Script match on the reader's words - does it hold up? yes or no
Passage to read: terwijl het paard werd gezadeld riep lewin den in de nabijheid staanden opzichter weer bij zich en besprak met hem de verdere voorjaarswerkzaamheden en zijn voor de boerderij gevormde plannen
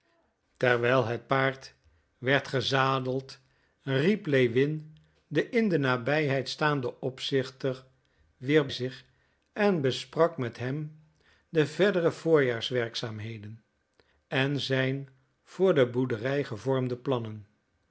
no